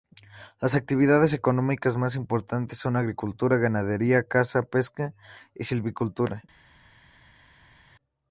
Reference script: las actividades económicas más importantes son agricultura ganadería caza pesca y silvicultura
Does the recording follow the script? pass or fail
pass